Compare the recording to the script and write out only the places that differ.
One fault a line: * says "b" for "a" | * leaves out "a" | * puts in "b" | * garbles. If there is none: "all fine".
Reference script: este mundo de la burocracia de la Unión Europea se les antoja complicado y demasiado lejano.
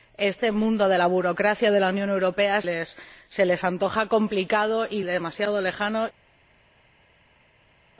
* leaves out "se"